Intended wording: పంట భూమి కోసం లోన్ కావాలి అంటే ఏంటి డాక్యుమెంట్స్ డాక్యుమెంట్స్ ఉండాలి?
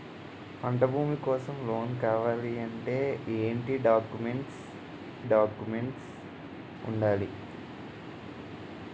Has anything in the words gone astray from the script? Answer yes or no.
no